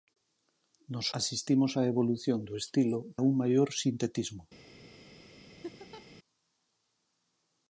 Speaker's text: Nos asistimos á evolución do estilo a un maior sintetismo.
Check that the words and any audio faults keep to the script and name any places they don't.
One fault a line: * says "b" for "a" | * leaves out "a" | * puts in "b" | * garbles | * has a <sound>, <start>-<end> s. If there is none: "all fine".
* has a laugh, 5.6-6.1 s